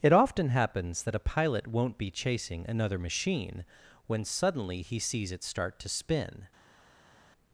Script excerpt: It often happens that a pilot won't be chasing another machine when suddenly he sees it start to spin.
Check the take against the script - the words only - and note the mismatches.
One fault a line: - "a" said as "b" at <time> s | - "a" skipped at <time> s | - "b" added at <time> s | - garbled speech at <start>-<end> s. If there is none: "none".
none